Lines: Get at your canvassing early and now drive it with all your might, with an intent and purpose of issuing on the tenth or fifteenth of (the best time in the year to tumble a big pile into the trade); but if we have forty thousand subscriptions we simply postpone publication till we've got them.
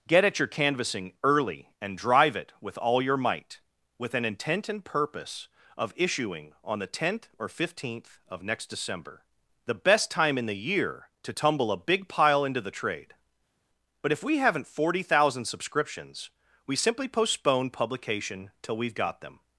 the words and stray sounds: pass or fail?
fail